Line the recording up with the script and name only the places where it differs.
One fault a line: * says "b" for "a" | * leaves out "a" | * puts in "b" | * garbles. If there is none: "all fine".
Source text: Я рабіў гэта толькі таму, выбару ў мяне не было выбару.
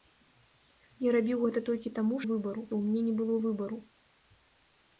all fine